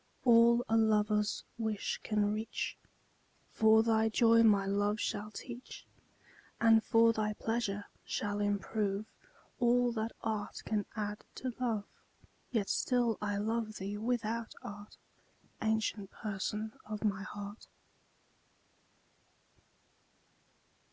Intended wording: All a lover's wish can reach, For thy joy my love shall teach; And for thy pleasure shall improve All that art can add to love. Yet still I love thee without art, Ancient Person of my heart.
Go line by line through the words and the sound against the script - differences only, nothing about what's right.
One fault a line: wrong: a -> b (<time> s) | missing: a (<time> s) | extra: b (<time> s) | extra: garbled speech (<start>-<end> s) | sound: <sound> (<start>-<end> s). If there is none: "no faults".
no faults